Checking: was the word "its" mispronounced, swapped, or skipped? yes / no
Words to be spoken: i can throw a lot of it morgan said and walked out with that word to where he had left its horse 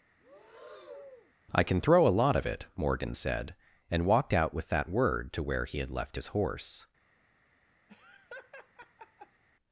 yes